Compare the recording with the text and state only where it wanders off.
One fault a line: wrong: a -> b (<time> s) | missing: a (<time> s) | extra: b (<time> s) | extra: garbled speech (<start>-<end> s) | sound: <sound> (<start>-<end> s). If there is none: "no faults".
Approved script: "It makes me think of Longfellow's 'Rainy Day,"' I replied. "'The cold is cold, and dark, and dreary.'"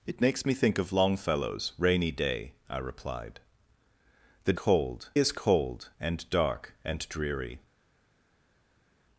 no faults